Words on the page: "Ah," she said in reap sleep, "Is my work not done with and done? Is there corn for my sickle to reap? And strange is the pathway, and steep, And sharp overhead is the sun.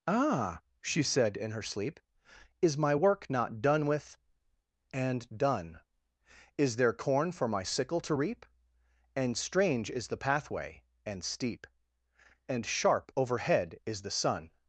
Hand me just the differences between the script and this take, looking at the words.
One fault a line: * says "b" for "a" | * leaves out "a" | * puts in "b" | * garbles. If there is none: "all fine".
* says "her" for "reap"